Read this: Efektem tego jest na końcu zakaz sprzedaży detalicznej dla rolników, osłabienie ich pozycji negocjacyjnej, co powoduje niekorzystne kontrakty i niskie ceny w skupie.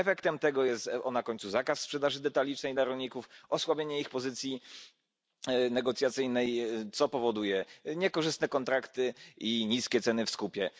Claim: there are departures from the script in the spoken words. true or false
false